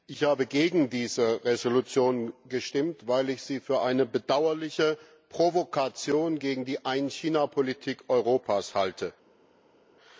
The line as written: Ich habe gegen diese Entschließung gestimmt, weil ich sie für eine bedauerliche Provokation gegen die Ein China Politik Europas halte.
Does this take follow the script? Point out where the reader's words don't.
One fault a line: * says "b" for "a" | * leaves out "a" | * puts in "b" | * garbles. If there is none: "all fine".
all fine